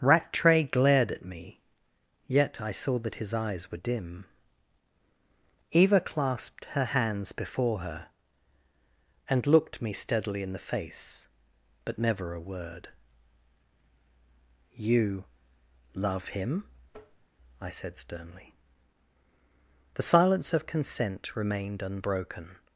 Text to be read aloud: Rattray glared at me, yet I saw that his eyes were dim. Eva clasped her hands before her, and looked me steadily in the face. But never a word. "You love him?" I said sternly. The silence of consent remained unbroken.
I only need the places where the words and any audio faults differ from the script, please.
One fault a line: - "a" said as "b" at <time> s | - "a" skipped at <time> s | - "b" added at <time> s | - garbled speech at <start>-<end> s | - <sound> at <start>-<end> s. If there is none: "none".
- tap at 16.9-17.3 s